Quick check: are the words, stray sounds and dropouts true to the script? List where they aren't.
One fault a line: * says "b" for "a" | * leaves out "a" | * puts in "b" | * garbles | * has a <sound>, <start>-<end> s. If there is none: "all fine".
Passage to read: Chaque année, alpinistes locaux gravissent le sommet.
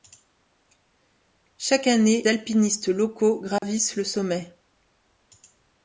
* has a dropout, 3.6-3.6 s